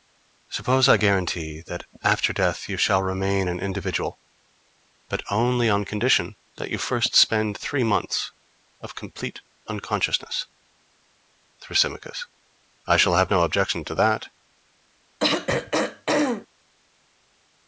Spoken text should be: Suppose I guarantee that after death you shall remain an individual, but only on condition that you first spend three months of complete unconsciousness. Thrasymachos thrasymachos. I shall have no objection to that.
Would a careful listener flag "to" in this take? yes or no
no